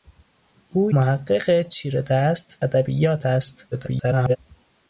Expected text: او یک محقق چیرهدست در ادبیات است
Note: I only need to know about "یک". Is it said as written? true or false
false